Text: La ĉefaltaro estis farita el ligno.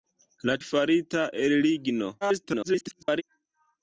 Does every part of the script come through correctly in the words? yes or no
no